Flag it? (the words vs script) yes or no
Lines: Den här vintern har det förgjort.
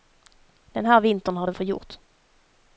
no